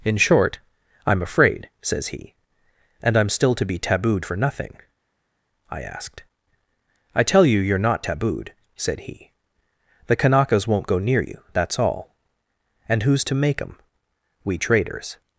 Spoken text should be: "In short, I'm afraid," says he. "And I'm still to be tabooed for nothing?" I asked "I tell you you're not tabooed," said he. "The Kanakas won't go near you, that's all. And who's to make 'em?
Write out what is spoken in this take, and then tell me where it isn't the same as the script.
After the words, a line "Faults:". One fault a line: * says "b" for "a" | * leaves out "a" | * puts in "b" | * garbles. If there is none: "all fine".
"In short, I'm afraid," says he. "And I'm still to be tabooed for nothing?" I asked "I tell you you're not tabooed," said he. "The Kanakas won't go near you, that's all. And who's to make 'em? We traders
Faults:
* puts in "We traders"